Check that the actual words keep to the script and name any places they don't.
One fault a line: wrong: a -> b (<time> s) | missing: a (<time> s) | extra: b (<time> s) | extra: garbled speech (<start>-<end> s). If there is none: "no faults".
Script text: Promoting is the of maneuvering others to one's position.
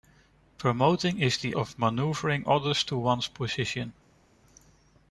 no faults